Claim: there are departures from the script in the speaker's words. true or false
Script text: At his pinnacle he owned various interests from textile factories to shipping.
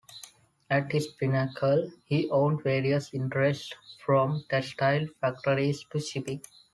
false